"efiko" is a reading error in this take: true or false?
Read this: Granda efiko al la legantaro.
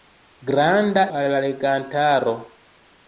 true